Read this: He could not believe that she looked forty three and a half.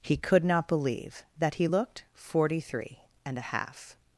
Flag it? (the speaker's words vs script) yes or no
yes